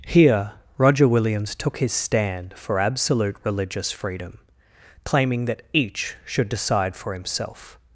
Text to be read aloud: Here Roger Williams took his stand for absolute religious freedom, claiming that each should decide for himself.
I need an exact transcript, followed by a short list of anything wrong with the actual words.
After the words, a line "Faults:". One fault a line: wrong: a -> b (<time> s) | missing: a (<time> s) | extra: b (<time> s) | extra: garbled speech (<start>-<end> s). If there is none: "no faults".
Here Roger Williams took his stand for absolute religious freedom, claiming that each should decide for himself.
Faults:
no faults